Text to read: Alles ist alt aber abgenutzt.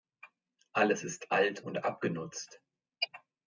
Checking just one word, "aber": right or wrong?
wrong